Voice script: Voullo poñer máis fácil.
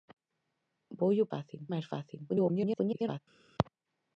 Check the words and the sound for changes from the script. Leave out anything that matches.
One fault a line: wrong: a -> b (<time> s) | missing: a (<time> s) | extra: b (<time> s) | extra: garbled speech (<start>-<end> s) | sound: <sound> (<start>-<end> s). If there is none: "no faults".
wrong: poñer -> fácil (1.3 s)
extra: garbled speech (2.3-3.2 s)